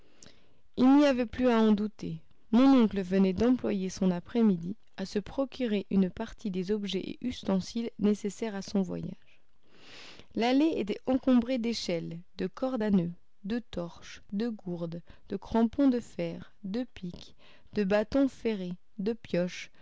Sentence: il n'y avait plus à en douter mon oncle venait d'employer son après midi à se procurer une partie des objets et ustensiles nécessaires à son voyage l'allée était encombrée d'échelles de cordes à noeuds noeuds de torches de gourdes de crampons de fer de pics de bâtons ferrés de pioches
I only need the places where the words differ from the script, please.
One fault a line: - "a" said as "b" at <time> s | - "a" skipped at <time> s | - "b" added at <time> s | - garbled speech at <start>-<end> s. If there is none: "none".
- "noeuds" skipped at 13.1 s